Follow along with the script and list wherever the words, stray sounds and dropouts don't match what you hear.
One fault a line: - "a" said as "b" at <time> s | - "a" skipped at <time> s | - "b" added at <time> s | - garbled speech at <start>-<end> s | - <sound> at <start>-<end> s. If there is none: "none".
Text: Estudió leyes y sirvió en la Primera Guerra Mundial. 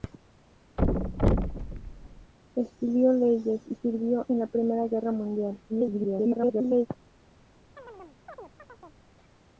- thud at 0.8-2.3 s
- garbled speech at 5.7-6.9 s
- chirp at 7.8-9.1 s